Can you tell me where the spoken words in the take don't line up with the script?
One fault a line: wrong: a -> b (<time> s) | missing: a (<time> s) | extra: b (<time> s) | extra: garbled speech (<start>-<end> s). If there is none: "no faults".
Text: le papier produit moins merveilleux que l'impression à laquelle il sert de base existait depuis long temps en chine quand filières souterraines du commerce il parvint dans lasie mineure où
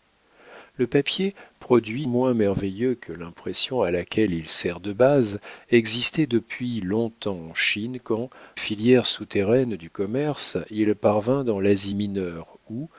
no faults